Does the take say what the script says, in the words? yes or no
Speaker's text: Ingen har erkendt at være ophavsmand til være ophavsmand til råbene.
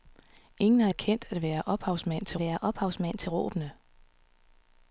yes